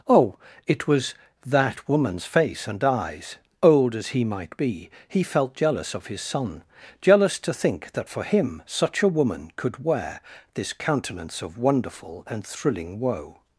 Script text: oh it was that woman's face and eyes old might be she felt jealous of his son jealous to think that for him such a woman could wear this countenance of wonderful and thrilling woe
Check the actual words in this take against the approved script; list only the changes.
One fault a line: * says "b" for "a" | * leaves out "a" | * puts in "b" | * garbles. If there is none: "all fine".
* puts in "as he"
* says "he" for "she"